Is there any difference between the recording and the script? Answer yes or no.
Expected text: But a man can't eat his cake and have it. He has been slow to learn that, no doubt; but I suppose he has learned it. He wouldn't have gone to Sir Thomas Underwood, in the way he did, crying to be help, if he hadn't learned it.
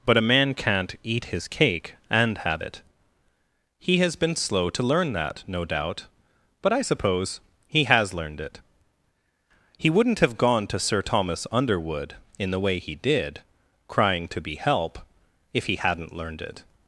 no